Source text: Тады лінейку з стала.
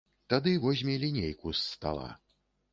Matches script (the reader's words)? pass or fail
fail